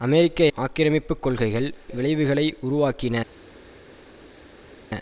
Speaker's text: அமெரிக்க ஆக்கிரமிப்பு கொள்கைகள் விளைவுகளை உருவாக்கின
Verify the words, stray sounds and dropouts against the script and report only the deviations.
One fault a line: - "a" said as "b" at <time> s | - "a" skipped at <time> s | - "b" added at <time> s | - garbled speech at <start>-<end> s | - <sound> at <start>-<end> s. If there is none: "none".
none